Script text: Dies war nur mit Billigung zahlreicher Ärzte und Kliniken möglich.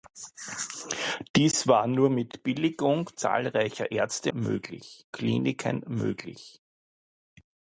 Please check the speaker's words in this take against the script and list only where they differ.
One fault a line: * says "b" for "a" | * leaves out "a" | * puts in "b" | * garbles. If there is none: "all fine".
* says "möglich" for "und"